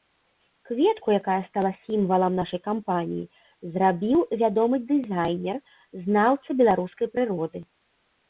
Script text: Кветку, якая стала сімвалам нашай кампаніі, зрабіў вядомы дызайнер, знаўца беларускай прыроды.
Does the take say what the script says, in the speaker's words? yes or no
yes